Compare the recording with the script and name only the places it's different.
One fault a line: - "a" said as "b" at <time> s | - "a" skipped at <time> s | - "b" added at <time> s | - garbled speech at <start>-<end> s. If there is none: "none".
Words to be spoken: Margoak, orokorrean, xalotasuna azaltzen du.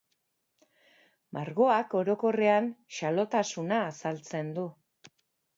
none